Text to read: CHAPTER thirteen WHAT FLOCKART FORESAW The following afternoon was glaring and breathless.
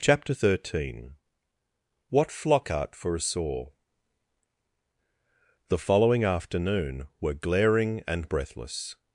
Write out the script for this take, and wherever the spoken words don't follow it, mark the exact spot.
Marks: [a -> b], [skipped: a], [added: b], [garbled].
CHAPTER thirteen WHAT FLOCKART FORESAW The following afternoon [was -> were] glaring and breathless.